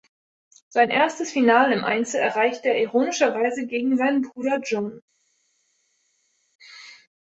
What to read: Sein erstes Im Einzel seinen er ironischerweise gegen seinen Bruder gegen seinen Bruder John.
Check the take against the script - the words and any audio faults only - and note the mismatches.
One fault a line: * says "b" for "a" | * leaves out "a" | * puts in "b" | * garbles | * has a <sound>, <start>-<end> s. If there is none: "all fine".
* puts in "Finale"
* says "erreichte" for "seinen"
* leaves out "gegen seinen Bruder"